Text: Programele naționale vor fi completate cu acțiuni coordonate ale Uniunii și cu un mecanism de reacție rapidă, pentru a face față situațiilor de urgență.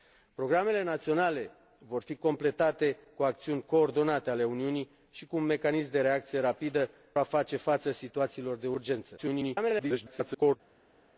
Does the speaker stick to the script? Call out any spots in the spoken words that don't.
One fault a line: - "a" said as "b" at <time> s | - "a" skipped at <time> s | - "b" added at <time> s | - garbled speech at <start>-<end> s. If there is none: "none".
- "pentru" skipped at 6.9 s
- garbled speech at 9.2-10.6 s